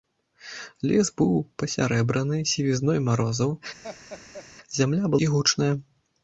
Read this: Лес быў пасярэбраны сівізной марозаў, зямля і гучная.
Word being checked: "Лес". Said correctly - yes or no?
yes